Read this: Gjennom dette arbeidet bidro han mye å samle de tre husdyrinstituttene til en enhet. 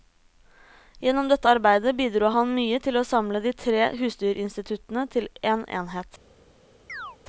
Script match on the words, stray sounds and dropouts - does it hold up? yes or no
no